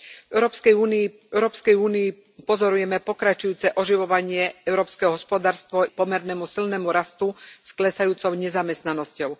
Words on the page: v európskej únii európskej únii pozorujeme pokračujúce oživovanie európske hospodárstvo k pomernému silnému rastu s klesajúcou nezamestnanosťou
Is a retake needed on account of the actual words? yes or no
no